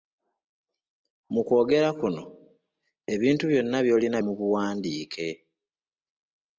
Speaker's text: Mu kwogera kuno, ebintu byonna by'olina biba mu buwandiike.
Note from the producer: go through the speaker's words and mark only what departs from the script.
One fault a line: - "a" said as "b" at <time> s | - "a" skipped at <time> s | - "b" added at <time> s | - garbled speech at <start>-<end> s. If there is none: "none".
- "biba" skipped at 4.2 s